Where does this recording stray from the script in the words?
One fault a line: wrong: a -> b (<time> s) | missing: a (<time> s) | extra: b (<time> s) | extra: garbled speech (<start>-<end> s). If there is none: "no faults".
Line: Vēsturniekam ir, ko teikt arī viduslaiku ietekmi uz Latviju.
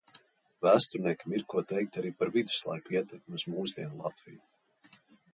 extra: par (2.2 s)
extra: mūsdienu (3.5 s)